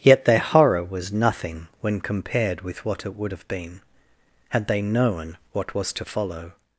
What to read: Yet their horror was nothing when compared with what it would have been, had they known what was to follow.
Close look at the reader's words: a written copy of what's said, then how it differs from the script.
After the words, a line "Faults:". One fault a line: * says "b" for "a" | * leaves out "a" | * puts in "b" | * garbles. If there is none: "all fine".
Yet their horror was nothing when compared with what it would have been, had they known what was to follow.
Faults:
all fine